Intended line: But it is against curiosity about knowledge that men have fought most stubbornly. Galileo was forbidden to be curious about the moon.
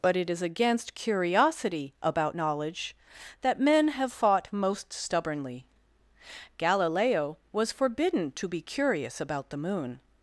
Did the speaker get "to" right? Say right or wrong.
right